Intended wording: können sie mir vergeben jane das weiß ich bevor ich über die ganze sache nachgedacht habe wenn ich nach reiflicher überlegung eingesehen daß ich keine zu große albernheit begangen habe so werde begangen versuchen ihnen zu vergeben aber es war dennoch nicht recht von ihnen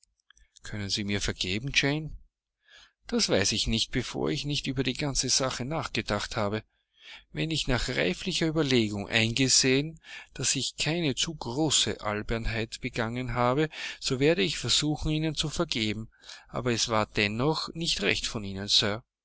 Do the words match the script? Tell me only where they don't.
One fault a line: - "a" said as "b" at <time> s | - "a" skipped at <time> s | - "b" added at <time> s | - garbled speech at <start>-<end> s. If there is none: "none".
- "nicht" added at 3.7 s
- "nicht" added at 4.5 s
- "begangen" said as "ich" at 14.4 s